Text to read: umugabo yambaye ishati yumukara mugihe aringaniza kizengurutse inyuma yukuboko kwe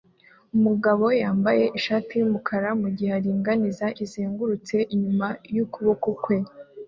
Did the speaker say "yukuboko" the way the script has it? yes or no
yes